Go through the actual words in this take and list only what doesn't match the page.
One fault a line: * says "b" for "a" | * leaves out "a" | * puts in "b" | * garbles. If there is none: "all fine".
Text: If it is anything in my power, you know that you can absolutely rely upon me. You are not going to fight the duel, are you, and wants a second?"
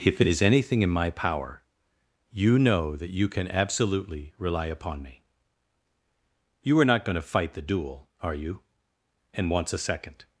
all fine